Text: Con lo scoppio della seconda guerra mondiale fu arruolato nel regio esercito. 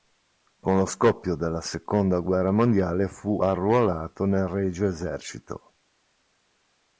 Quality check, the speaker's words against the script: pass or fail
pass